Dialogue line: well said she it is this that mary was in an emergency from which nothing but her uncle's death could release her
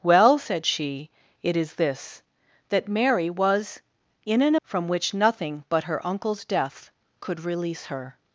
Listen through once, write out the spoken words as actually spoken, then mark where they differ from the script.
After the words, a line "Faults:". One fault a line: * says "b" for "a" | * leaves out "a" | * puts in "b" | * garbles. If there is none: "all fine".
well said she it is this that mary was in an from which nothing but her uncle's death could release her
Faults:
* leaves out "emergency"